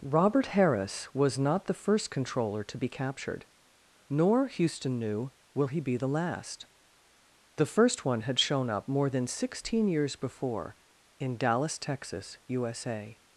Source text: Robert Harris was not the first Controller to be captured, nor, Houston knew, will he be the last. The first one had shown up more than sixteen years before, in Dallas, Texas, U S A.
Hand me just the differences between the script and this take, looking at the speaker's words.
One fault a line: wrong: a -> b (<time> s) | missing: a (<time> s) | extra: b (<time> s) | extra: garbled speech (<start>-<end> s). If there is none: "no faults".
no faults